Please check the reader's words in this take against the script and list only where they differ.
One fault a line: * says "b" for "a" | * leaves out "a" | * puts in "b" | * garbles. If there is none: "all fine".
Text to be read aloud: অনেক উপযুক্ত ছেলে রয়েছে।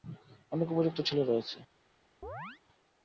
all fine